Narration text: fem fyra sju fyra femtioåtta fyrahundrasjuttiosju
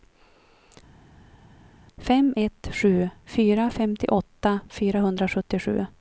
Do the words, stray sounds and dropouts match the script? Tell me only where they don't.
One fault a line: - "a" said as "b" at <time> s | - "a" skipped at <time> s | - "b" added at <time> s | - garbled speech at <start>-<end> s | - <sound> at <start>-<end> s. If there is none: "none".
- "fyra" said as "ett" at 2.3 s